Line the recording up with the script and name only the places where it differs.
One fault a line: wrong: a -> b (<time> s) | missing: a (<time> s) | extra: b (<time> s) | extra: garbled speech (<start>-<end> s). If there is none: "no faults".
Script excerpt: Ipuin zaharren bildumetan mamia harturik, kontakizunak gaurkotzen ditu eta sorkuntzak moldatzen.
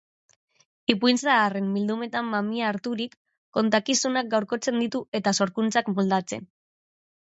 no faults